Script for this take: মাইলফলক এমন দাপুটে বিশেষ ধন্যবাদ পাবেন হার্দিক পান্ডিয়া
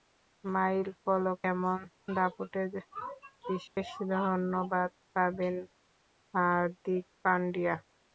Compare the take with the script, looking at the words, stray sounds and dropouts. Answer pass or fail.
fail